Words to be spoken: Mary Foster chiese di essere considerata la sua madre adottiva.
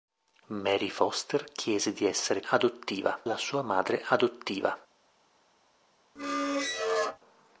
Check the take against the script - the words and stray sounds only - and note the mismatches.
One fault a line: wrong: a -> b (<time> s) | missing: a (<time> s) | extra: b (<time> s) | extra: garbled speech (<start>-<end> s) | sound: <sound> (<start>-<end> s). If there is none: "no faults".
wrong: considerata -> adottiva (2.5 s)
sound: squeak (6.2-7.2 s)